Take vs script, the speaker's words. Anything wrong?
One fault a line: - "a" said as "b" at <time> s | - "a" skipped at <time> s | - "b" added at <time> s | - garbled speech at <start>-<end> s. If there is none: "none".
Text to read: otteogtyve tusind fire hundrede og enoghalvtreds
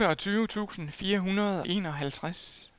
- "og" skipped at 1.6 s